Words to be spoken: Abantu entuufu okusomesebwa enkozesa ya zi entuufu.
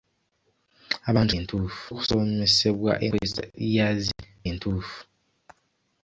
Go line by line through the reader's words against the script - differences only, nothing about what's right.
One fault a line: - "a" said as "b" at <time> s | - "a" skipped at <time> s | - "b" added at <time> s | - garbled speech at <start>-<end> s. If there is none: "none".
none